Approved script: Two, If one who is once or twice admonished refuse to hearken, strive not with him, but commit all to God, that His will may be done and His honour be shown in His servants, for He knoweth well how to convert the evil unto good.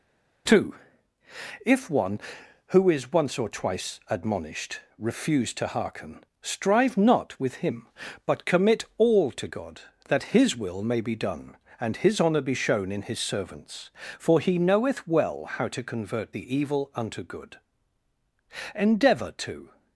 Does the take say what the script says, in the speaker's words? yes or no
no